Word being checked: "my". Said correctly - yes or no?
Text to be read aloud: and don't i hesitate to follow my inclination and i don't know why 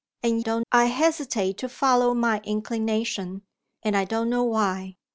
yes